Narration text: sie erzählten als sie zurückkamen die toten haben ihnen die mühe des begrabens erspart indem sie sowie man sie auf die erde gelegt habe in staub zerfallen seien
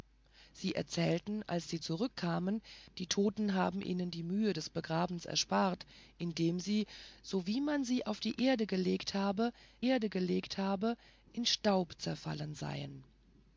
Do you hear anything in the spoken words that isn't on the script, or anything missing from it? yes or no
yes